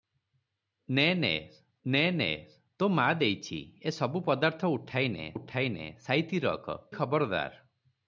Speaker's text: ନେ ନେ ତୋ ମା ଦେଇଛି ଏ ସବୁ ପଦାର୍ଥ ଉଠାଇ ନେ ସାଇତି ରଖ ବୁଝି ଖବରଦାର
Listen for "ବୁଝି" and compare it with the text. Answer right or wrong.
wrong